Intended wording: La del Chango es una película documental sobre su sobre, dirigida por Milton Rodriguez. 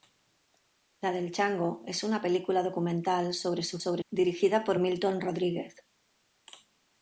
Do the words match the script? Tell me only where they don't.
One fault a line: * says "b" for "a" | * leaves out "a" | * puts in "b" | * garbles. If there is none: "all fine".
all fine